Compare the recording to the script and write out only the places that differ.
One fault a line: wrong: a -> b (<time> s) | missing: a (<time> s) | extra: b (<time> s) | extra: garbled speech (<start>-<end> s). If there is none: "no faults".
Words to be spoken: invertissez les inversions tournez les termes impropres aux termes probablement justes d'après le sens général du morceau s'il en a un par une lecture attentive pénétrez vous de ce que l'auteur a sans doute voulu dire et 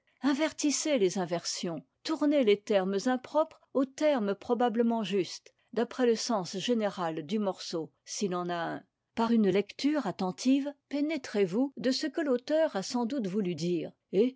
no faults